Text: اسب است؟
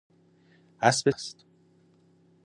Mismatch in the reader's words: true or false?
false